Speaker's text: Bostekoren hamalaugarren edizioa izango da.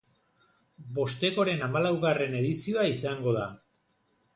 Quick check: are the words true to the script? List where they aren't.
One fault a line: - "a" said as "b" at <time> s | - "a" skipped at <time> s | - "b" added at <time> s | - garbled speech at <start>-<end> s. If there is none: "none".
none